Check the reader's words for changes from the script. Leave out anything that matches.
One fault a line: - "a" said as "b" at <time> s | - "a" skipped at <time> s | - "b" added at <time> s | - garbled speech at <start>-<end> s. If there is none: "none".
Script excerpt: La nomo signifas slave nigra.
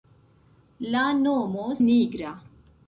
- "signifas slave" skipped at 1.7 s